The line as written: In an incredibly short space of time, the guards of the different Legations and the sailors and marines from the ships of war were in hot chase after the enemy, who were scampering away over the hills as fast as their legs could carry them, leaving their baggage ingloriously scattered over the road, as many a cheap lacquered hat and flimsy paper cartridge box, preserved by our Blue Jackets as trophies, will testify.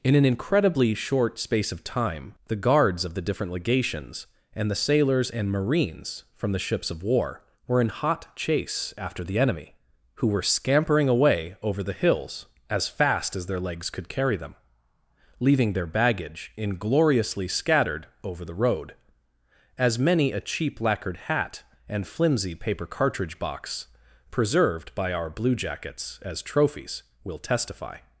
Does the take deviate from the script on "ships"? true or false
false